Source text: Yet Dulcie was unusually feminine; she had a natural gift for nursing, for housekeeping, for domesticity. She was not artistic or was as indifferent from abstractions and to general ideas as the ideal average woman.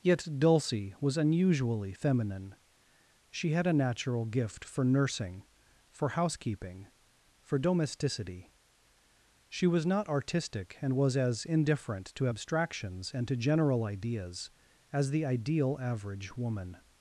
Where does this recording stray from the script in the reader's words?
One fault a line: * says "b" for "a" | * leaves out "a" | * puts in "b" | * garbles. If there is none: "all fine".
* says "and" for "or"
* says "to" for "from"